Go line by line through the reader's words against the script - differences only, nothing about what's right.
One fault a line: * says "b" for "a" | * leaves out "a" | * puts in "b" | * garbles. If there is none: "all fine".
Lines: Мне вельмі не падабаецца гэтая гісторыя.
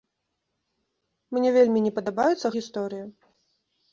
* leaves out "гэтая"